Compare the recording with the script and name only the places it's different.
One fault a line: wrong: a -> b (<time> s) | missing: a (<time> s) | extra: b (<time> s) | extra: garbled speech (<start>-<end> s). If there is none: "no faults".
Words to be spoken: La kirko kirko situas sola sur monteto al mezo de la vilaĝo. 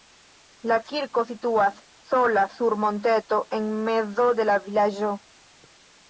missing: kirko (1.2 s)
wrong: al -> en (3.6 s)